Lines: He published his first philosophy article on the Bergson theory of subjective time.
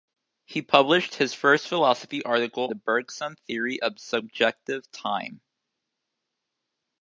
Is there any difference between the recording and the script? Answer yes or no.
yes